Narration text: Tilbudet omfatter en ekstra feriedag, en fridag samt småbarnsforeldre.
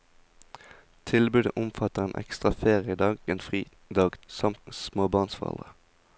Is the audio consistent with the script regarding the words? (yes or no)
yes